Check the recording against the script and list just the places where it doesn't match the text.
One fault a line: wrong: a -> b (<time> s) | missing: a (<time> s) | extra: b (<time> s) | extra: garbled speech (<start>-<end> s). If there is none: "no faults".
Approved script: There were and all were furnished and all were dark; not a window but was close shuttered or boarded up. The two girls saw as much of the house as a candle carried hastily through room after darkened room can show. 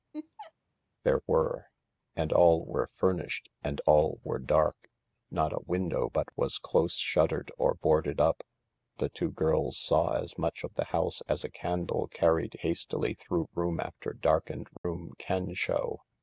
no faults